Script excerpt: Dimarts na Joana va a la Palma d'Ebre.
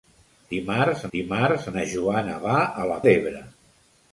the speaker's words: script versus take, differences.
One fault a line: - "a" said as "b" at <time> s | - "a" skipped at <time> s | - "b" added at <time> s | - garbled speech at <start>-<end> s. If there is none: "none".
- "dimarts" added at 1.1 s
- "Palma" skipped at 3.0 s